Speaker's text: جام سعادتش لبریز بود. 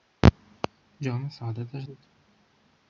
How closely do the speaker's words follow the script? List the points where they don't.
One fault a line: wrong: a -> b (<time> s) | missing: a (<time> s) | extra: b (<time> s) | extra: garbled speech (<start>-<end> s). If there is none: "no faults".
missing: لبریز (1.9 s)